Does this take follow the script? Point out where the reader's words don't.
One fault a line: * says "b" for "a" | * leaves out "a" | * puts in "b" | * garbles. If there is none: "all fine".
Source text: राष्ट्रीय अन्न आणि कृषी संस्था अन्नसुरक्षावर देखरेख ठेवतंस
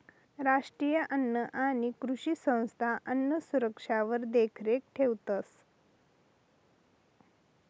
all fine